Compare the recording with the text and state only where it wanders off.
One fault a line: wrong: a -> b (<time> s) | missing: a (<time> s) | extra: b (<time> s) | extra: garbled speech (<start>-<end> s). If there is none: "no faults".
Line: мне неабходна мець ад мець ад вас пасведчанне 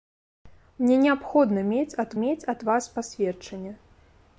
no faults